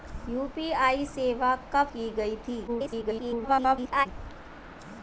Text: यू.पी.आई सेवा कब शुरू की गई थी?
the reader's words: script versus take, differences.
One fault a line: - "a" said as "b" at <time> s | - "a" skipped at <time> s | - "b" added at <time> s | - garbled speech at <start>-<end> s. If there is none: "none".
- "शुरू" skipped at 1.9 s
- garbled speech at 2.7-4.1 s